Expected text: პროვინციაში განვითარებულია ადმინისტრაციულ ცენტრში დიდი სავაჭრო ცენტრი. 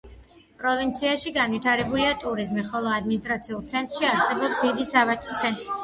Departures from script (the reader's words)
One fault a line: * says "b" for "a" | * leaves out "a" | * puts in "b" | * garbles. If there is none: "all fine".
* puts in "ტურიზმი ხოლო"
* puts in "არსებობს"